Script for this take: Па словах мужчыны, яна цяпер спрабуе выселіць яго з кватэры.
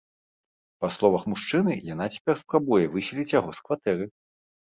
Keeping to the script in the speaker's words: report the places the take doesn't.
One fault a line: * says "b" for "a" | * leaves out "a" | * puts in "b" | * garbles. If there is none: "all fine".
all fine